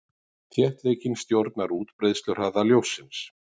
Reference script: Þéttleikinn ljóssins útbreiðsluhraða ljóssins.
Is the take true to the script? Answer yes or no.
no